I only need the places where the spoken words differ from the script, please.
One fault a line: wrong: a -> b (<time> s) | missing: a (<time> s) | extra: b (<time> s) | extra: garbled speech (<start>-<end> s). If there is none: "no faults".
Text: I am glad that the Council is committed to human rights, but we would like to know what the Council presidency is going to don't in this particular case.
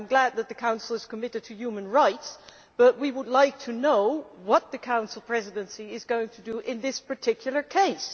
wrong: don't -> do (6.4 s)